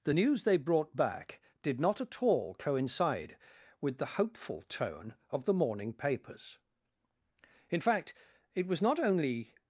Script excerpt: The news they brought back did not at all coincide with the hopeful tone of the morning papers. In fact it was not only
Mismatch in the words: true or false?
false